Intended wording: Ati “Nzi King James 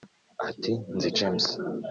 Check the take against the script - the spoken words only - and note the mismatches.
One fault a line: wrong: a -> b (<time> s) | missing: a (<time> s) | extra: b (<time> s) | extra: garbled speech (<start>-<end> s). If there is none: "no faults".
missing: King (1.1 s)